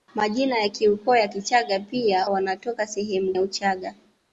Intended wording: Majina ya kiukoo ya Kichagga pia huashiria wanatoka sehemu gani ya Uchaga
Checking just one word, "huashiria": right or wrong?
wrong